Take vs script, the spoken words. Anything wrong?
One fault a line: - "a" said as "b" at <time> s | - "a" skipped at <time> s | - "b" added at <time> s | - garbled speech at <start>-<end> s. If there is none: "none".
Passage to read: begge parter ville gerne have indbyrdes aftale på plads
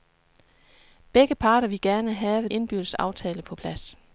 none